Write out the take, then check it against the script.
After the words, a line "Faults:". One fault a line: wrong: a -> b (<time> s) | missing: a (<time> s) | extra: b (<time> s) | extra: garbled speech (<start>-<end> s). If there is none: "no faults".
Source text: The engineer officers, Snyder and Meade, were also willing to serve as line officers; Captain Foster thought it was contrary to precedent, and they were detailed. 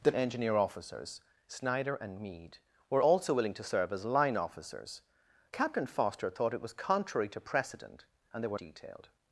The engineer officers, Snyder and Meade, were also willing to serve as line officers; Captain Foster thought it was contrary to precedent, and they were detailed.
Faults:
no faults